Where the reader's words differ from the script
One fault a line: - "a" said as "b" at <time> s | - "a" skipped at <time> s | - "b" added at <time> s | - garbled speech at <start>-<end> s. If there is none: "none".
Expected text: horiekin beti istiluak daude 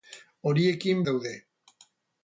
- "beti istiluak" skipped at 1.0 s